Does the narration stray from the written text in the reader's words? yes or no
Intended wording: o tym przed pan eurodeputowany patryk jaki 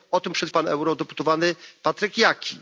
no